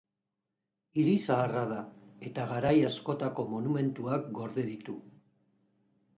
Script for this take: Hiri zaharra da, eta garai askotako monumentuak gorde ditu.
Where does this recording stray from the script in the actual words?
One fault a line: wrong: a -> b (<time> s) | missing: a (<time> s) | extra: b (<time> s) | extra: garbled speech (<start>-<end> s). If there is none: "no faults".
no faults